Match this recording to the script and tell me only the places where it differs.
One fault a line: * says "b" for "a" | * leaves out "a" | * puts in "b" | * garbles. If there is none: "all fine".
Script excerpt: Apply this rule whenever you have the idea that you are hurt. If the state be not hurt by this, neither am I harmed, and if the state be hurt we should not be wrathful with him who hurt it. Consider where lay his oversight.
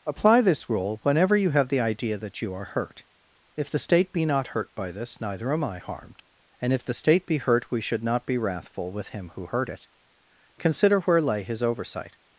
all fine